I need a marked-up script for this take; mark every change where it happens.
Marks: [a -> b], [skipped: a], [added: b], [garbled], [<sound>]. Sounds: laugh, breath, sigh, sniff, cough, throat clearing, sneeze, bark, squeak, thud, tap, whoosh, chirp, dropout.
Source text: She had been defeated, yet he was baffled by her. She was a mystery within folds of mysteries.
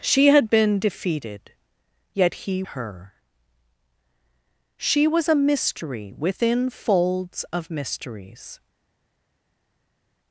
She had been defeated, yet he [skipped: was baffled by] her. She was a mystery within folds of mysteries.